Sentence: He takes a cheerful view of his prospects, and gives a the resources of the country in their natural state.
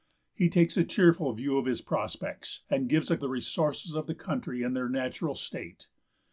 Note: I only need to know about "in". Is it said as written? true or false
true